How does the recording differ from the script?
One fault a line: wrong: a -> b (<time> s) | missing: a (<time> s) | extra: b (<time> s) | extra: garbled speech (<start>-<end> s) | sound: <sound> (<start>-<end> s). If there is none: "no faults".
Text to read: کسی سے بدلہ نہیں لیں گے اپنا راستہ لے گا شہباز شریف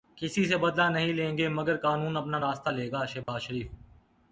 extra: مگر قانون (1.5 s)
sound: dropout (3.2-3.3 s)